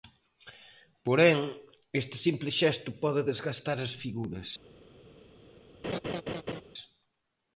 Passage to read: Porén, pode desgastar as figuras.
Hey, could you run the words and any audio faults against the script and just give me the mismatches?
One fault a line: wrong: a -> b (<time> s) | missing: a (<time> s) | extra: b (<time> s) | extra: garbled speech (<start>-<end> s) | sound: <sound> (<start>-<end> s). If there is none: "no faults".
extra: este simple xesto (2.0 s)
sound: laugh (5.8-6.6 s)